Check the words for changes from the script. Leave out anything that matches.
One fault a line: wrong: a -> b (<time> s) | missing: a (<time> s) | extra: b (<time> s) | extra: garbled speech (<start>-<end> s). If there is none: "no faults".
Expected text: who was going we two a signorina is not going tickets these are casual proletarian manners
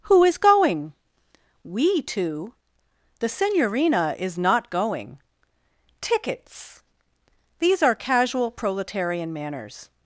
wrong: was -> is (0.2 s)
wrong: a -> the (3.2 s)